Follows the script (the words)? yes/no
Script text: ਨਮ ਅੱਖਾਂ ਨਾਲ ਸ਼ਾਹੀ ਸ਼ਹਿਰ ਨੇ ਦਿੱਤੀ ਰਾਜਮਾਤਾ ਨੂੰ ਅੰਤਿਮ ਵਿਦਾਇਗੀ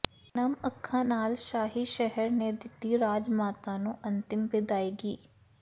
yes